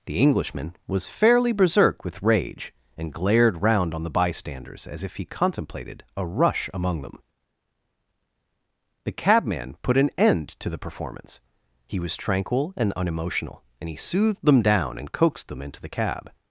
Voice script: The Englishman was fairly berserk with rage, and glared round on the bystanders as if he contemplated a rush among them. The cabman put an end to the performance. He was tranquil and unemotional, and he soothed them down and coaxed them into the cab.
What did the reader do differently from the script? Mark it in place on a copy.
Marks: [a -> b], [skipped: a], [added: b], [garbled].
The Englishman was fairly berserk with rage, and glared round on the bystanders as if he contemplated a rush among them. The cabman put an end to the performance. He was tranquil and unemotional, and he soothed them down and coaxed them into the cab.